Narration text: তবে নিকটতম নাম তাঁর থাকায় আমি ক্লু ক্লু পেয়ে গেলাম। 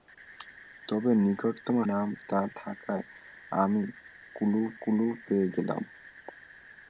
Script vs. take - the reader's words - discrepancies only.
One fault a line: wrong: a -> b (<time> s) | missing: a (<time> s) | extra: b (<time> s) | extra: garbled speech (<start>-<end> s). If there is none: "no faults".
no faults